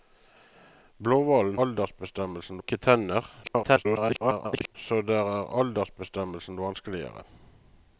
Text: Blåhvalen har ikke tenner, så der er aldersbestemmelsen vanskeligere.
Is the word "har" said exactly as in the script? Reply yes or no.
no